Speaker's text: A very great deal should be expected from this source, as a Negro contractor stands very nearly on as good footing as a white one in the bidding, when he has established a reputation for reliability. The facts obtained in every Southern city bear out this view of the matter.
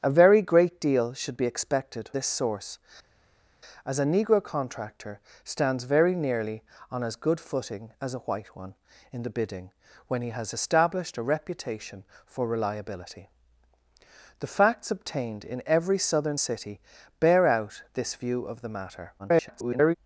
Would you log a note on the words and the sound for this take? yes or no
yes